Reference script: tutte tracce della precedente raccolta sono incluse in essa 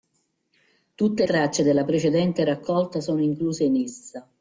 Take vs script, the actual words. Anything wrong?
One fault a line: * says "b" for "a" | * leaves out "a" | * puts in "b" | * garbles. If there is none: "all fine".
all fine